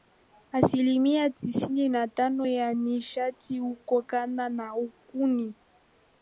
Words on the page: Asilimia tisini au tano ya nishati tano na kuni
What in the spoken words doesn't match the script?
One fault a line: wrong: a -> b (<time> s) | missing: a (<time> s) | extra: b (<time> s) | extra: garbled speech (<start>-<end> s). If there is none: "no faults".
wrong: au -> na (1.9 s)
wrong: tano -> hutokana (3.6 s)